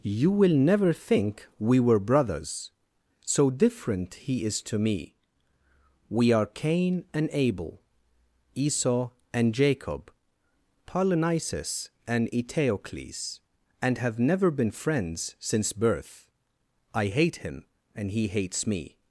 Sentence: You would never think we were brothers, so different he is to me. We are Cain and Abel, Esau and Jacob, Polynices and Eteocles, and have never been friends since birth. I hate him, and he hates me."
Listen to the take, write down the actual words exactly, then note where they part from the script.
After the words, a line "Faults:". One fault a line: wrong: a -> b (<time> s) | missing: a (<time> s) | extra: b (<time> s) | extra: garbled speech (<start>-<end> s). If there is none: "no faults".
You will never think we were brothers, so different he is to me. We are Cain and Abel, Esau and Jacob, Polynices and Eteocles, and have never been friends since birth. I hate him, and he hates me."
Faults:
wrong: would -> will (0.3 s)